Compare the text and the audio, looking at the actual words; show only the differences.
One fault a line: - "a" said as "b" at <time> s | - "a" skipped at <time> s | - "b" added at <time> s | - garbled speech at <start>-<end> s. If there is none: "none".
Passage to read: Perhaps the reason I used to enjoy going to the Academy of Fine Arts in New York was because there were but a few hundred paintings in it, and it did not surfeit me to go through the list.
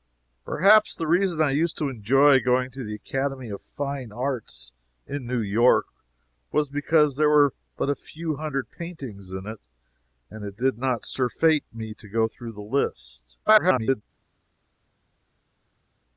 - garbled speech at 13.4-14.0 s